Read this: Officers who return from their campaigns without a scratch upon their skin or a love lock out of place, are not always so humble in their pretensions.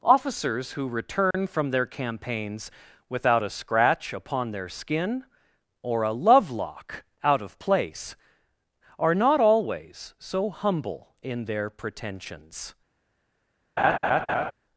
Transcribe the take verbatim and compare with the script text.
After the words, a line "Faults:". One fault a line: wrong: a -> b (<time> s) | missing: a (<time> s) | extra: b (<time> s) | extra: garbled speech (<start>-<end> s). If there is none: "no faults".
Officers who return from their campaigns without a scratch upon their skin or a love lock out of place, are not always so humble in their pretensions.
Faults:
no faults